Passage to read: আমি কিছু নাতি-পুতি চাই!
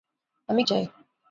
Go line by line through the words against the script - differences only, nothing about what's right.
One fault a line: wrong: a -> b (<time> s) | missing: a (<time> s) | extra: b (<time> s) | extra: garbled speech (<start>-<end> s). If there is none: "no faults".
missing: কিছু নাতি-পুতি (0.6 s)